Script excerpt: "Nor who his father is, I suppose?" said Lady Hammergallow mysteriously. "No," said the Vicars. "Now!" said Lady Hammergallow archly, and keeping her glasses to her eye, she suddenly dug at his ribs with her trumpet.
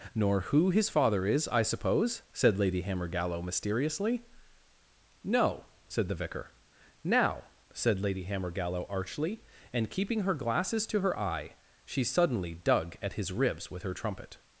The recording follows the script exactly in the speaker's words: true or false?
false